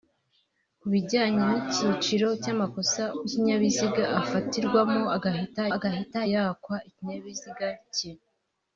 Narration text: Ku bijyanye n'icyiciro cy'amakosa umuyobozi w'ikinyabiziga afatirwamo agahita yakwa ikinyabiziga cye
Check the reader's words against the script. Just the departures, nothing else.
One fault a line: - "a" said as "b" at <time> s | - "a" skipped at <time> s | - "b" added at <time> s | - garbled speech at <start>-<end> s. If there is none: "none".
- "umuyobozi" skipped at 3.0 s
- "agahita" added at 5.7 s